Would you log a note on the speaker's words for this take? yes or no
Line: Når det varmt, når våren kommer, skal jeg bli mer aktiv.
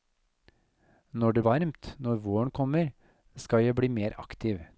no